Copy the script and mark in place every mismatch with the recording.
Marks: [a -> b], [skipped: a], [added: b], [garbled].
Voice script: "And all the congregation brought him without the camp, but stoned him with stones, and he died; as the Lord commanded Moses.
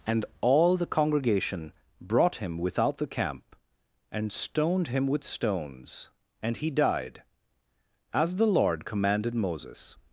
"And all the congregation brought him without the camp, [but -> and] stoned him with stones, and he died; as the Lord commanded Moses.